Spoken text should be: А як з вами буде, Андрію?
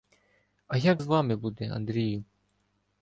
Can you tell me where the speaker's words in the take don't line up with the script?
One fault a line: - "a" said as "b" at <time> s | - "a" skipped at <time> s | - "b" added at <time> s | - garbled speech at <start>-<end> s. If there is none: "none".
none